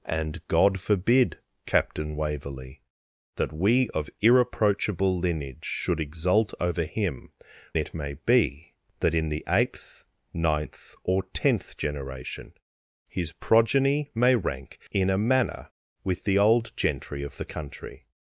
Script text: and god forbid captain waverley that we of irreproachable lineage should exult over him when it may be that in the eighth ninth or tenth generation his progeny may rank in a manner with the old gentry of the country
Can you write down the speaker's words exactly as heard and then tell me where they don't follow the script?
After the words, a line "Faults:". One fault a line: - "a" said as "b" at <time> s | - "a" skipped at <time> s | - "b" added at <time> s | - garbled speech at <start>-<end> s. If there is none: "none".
and god forbid captain waverley that we of irreproachable lineage should exult over him it may be that in the eighth ninth or tenth generation his progeny may rank in a manner with the old gentry of the country
Faults:
- "when" skipped at 7.3 s